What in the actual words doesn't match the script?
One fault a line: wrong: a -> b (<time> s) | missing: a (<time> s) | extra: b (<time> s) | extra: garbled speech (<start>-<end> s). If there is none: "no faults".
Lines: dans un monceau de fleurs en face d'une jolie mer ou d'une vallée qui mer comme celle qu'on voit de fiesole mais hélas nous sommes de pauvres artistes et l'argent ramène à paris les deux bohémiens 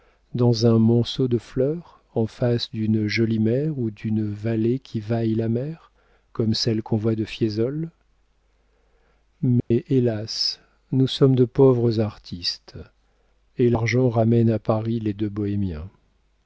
extra: vaille la (5.0 s)